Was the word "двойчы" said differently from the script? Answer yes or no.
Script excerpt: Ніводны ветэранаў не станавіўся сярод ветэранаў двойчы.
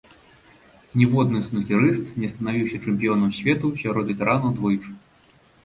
no